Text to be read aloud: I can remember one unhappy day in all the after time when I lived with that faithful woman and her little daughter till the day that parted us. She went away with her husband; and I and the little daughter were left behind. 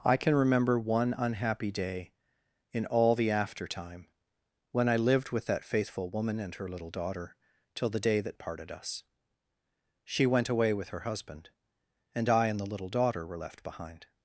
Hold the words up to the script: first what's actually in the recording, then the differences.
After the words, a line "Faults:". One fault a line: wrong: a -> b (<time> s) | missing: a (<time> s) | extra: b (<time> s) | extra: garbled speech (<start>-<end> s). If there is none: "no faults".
I can remember one unhappy day in all the after time when I lived with that faithful woman and her little daughter till the day that parted us. She went away with her husband; and I and the little daughter were left behind.
Faults:
no faults